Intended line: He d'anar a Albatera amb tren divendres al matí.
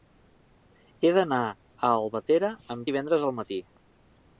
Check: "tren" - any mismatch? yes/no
yes